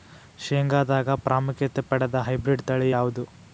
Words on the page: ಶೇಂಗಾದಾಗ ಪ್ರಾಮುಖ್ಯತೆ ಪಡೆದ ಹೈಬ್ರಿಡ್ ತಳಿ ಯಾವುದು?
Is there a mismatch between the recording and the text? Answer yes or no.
no